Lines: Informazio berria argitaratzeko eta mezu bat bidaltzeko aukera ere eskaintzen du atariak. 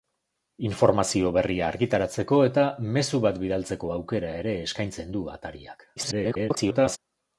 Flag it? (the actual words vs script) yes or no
yes